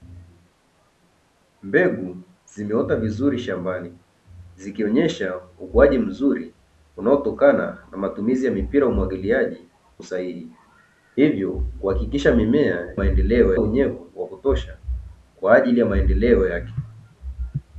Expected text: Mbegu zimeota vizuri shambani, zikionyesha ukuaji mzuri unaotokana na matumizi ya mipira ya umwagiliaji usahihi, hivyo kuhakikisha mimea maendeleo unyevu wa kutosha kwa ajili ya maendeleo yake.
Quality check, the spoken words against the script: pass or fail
pass